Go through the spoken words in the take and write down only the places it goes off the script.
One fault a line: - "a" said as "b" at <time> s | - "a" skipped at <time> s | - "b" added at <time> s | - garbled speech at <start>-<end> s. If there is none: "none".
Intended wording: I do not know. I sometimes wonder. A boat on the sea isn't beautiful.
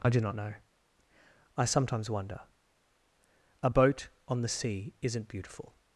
none